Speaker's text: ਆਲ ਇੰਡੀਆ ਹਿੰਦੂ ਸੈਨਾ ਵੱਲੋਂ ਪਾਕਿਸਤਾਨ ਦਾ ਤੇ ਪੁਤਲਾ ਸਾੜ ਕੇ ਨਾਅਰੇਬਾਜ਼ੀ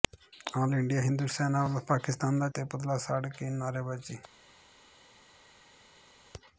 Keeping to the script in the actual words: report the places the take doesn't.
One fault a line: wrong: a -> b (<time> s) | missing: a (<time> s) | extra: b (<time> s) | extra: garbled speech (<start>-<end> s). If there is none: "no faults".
no faults